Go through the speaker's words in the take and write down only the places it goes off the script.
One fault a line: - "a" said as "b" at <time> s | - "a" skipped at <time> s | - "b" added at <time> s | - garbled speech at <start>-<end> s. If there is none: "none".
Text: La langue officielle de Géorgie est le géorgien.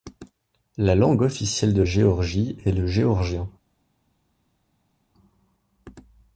none